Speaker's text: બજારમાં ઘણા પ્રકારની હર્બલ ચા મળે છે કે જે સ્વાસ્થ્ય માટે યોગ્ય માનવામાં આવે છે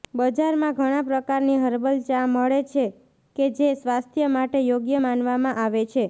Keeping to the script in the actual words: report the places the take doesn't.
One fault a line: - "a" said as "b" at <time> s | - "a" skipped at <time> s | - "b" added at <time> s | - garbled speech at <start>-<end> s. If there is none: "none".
none